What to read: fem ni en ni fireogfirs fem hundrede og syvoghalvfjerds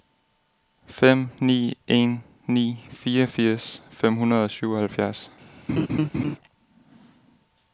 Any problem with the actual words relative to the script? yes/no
no